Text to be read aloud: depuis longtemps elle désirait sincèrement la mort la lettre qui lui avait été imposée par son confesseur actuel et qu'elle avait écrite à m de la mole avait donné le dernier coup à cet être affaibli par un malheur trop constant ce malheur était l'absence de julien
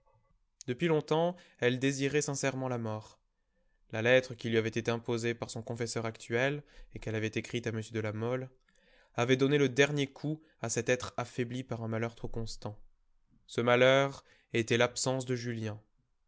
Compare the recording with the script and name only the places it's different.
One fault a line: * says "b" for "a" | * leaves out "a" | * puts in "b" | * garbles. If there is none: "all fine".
all fine